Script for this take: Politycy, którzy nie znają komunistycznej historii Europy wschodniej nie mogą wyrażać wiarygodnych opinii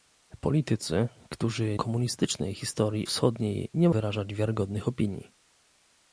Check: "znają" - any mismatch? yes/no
yes